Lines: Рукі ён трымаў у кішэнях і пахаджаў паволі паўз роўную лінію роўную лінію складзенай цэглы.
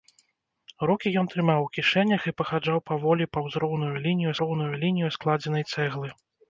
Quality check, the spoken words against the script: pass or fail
pass